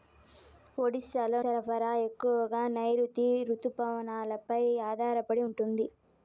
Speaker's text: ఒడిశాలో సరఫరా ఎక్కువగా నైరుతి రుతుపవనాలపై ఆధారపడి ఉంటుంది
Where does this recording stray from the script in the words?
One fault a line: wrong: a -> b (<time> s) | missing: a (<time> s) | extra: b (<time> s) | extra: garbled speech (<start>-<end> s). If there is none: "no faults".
no faults